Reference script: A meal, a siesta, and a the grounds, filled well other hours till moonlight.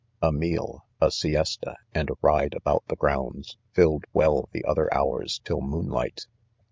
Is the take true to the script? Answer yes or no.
no